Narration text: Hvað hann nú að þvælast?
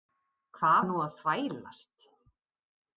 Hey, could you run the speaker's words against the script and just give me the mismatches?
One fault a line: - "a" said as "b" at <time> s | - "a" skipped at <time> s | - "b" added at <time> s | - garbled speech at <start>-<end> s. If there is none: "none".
none